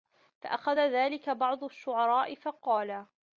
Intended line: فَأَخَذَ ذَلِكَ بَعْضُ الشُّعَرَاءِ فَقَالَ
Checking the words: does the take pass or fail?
pass